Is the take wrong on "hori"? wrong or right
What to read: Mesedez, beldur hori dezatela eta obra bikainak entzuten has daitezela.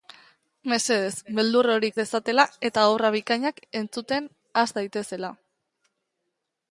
right